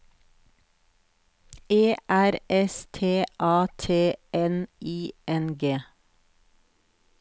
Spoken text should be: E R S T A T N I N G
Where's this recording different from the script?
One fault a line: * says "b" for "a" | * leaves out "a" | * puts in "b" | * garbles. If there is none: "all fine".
all fine